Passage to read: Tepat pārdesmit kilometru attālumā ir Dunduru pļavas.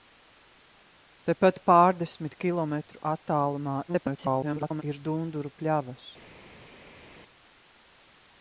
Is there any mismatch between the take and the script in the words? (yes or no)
yes